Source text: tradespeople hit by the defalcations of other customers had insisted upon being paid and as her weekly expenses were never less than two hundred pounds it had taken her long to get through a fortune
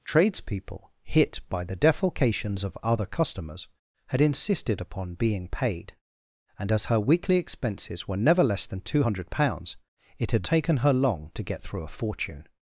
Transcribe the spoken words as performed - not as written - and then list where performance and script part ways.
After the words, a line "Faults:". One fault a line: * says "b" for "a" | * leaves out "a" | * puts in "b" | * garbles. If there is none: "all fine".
tradespeople hit by the defalcations of other customers had insisted upon being paid and as her weekly expenses were never less than two hundred pounds it had taken her long to get through a fortune
Faults:
all fine